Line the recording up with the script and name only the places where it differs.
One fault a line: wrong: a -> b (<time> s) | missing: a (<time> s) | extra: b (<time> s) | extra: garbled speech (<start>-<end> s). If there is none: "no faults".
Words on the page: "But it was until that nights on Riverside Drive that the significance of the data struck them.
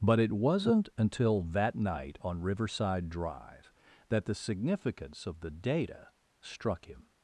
wrong: was -> wasn't (0.3 s)
wrong: nights -> night (1.8 s)
wrong: them -> him (6.9 s)